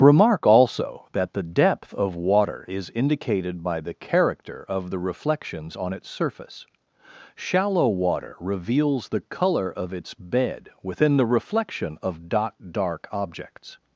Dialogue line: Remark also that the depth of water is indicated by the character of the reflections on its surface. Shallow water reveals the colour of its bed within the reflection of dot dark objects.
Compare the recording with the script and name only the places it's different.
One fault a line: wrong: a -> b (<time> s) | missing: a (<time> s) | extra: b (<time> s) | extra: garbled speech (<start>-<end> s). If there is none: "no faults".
no faults